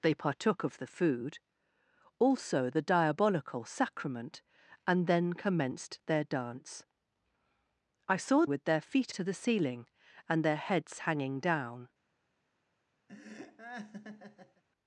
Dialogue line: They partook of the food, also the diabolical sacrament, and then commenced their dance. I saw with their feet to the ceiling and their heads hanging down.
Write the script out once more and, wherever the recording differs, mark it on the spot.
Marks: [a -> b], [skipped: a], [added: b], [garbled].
They partook of the food, also the diabolical sacrament, and then commenced their dance. I saw with their feet to the ceiling and their heads hanging down.